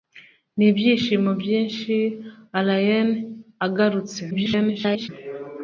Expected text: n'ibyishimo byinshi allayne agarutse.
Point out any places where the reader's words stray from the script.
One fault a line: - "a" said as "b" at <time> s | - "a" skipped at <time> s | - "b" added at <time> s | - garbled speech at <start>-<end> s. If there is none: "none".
- garbled speech at 4.3-5.1 s